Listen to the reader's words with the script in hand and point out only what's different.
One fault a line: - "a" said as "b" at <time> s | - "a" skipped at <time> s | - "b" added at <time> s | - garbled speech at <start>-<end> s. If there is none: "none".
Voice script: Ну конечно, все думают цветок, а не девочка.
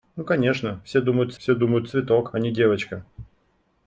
- "все думают" added at 1.4 s